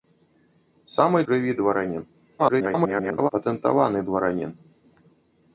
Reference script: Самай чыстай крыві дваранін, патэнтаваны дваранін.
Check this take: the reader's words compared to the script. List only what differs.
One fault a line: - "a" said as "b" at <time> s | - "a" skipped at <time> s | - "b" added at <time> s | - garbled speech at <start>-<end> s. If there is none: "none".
- "чыстай" skipped at 1.2 s
- garbled speech at 2.4-3.3 s